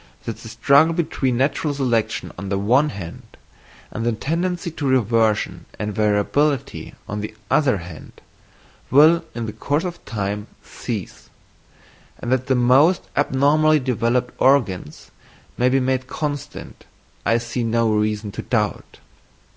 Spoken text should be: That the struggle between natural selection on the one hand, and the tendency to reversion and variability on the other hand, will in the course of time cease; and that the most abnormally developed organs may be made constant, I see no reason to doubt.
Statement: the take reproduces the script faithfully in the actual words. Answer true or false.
true